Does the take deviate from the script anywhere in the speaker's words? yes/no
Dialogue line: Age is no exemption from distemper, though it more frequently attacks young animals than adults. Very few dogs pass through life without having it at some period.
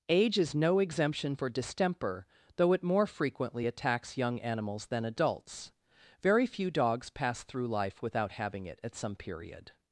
yes